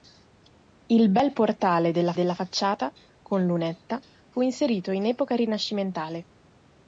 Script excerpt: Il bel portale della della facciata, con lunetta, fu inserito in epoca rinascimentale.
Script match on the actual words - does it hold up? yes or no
yes